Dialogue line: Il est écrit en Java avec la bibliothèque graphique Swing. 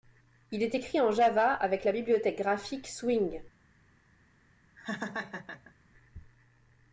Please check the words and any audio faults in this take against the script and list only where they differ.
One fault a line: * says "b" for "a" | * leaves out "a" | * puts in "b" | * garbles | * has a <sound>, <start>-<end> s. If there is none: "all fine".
* has a laugh, 4.8-5.7 s